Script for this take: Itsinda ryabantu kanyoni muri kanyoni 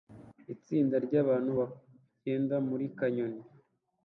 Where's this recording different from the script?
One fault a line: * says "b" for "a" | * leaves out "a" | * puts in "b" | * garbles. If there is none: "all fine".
* says "bagenda" for "kanyoni"